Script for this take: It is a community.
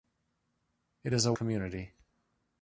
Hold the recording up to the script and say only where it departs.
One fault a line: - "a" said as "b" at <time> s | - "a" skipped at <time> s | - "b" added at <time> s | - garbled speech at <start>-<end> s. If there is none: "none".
none